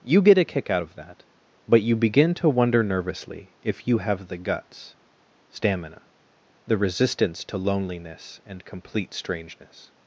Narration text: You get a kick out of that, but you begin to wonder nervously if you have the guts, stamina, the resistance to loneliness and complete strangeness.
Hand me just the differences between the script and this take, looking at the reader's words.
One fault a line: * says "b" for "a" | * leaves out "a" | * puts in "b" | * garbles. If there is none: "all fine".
all fine